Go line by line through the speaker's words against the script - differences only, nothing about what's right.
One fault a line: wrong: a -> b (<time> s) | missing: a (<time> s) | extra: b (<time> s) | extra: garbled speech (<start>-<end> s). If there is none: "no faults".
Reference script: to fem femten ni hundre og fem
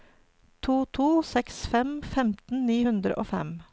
extra: to seks (1.0 s)